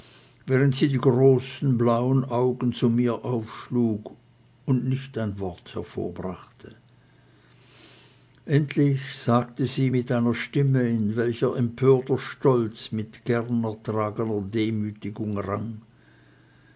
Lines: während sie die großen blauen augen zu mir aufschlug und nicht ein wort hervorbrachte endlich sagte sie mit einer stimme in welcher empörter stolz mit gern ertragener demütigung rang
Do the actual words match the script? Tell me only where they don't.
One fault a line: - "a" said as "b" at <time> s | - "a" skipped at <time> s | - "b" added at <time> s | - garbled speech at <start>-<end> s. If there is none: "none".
none